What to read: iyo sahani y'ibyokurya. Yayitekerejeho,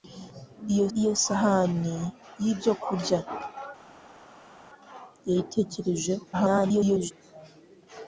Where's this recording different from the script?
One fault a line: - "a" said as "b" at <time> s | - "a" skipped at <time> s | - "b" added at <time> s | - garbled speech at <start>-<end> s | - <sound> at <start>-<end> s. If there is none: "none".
- "iyo" added at 1.0 s
- garbled speech at 6.3-7.1 s